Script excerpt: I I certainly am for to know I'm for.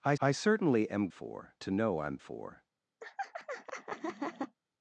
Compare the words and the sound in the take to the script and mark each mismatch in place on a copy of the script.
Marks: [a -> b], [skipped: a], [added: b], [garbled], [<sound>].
I I certainly am for to know I'm for. [laugh]